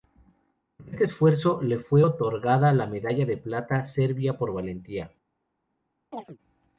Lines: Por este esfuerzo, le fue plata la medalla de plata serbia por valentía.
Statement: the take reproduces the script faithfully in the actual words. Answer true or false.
false